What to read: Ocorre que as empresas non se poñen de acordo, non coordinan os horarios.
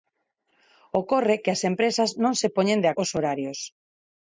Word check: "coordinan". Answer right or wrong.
wrong